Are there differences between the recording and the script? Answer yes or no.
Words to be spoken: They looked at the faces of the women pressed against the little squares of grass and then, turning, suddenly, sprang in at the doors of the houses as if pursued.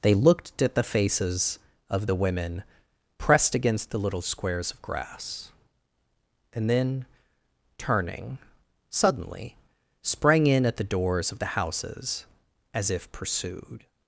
no